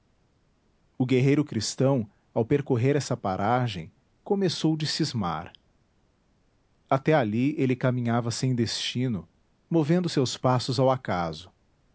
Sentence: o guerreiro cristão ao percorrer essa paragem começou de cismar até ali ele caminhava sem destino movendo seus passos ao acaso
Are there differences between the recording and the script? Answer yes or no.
no